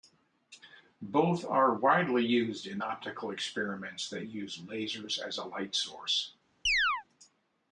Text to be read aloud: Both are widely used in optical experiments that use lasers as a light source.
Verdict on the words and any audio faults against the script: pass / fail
fail